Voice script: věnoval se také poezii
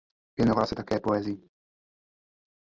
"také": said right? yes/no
yes